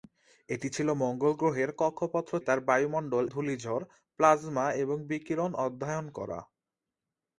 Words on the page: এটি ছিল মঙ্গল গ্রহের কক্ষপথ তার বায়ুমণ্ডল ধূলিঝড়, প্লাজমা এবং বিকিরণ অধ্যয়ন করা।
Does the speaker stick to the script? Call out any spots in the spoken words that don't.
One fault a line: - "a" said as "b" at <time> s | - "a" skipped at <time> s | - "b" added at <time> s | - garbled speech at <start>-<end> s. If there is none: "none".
none